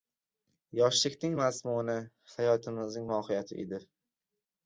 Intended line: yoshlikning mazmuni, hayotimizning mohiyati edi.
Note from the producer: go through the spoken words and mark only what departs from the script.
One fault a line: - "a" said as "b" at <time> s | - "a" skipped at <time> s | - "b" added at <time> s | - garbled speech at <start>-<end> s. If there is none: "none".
none